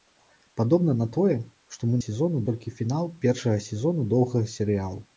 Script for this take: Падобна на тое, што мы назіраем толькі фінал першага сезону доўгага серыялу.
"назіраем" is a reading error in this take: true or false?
true